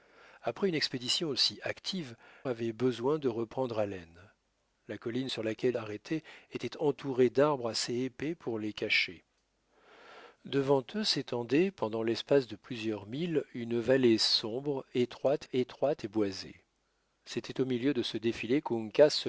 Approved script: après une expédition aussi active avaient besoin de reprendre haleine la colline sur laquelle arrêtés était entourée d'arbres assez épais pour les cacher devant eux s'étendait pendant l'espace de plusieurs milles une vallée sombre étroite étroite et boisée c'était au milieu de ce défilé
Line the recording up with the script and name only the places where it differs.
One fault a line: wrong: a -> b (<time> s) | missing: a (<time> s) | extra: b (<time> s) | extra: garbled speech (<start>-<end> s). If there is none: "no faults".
no faults